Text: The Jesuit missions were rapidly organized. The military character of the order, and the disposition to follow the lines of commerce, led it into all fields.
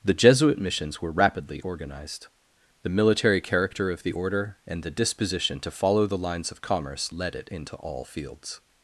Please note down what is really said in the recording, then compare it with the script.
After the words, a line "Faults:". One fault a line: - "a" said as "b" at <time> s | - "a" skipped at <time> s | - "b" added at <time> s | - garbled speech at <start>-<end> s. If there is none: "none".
The Jesuit missions were rapidly organized. The military character of the order, and the disposition to follow the lines of commerce, led it into all fields.
Faults:
none